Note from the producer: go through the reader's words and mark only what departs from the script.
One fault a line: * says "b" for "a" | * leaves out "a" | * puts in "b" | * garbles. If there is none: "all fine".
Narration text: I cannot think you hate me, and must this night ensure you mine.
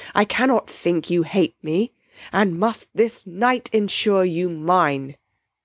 all fine